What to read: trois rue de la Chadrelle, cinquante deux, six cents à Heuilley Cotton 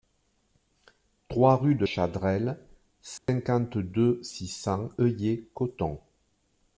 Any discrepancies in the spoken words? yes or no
yes